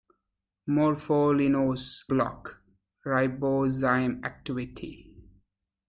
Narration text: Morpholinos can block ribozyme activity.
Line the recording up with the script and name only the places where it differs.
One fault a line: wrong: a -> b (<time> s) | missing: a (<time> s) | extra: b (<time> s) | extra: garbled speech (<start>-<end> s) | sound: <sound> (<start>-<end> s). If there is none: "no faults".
missing: can (2.1 s)